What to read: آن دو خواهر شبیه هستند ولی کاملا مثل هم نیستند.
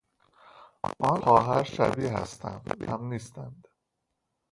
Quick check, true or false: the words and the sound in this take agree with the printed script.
false